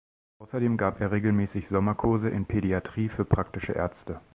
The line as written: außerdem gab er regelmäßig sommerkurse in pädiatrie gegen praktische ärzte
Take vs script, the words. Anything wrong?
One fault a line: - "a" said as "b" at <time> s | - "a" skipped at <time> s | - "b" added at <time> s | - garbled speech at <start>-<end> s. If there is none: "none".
- "gegen" said as "für" at 3.1 s